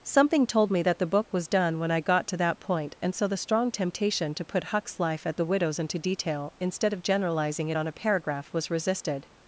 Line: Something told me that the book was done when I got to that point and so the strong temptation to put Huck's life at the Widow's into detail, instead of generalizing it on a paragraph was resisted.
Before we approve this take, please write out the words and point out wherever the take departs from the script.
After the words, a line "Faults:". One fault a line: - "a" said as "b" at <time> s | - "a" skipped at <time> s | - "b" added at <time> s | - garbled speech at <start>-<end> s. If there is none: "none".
Something told me that the book was done when I got to that point and so the strong temptation to put Huck's life at the Widow's into detail, instead of generalizing it on a paragraph was resisted.
Faults:
none